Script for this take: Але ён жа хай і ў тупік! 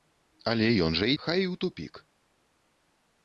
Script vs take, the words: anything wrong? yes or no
no